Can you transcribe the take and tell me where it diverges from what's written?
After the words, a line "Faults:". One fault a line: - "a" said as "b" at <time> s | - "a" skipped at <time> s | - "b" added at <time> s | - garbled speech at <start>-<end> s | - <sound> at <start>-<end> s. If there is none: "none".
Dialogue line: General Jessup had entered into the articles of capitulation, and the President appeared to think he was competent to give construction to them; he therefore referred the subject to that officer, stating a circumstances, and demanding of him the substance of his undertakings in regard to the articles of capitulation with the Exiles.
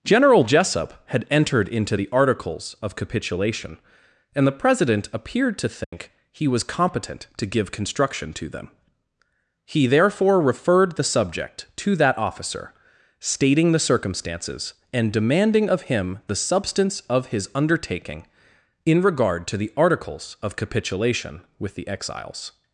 General Jessup had entered into the articles of capitulation, and the President appeared to think he was competent to give construction to them; he therefore referred the subject to that officer, stating the circumstances, and demanding of him the substance of his undertaking in regard to the articles of capitulation with the Exiles.
Faults:
- dropout at 5.8-5.9 s
- "a" said as "the" at 13.7 s
- "undertakings" said as "undertaking" at 17.5 s